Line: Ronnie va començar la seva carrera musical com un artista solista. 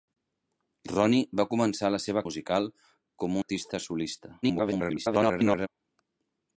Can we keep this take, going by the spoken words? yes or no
no